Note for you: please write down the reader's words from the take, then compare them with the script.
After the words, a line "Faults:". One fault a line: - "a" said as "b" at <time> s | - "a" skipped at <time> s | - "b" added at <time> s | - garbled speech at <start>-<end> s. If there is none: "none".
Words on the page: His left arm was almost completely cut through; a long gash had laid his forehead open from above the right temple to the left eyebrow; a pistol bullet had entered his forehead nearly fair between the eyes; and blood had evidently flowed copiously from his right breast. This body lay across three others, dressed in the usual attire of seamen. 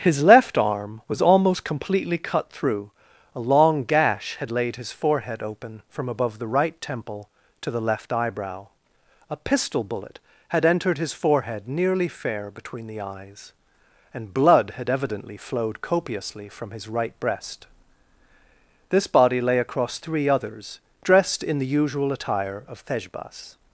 His left arm was almost completely cut through; a long gash had laid his forehead open from above the right temple to the left eyebrow; a pistol bullet had entered his forehead nearly fair between the eyes; and blood had evidently flowed copiously from his right breast. This body lay across three others, dressed in the usual attire of thejbas.
Faults:
- "seamen" said as "thejbas" at 22.8 s